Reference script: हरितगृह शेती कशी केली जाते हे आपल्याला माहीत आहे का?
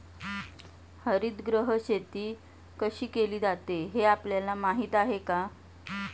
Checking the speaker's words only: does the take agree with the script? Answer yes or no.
yes